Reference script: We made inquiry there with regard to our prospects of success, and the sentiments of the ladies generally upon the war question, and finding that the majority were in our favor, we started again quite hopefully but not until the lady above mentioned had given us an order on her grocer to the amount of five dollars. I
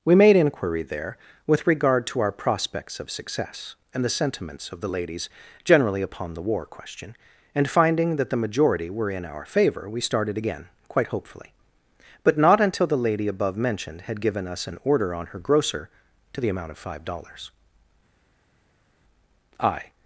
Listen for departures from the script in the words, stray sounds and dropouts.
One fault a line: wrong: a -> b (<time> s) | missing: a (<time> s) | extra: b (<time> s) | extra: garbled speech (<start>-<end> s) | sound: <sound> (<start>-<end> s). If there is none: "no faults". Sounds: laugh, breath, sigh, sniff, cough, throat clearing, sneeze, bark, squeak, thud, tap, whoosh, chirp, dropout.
no faults